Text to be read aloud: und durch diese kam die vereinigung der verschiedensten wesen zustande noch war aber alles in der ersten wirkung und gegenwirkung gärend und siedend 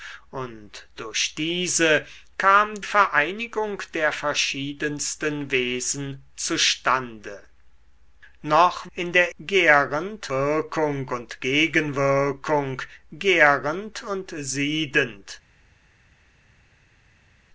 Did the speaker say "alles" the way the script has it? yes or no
no